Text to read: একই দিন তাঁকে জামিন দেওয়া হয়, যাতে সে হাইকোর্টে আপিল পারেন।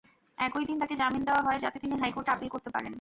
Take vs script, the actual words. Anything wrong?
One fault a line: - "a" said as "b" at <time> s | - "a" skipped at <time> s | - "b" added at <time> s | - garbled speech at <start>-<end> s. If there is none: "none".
- "সে" said as "তিনি" at 1.8 s
- "করতে" added at 2.5 s